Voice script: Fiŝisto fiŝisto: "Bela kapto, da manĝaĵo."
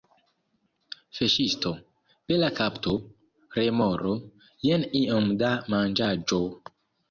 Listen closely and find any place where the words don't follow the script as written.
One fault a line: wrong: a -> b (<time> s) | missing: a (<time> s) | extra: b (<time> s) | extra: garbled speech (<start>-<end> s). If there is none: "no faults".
missing: fiŝisto (1.7 s)
extra: remoro Jen iom (3.6 s)